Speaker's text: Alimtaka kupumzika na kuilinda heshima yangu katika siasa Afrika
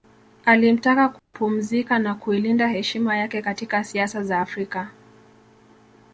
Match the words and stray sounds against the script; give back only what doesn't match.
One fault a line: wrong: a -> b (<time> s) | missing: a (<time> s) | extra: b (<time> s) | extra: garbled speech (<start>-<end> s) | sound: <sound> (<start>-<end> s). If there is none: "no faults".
sound: dropout (1.2-1.3 s)
wrong: yangu -> yake (3.2 s)
extra: za (4.2 s)